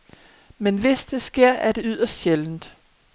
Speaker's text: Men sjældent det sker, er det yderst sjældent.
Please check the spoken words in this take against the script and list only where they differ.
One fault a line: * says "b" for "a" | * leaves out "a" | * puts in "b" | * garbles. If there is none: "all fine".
* says "hvis" for "sjældent"